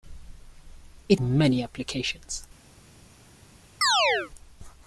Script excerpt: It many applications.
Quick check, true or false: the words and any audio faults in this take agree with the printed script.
false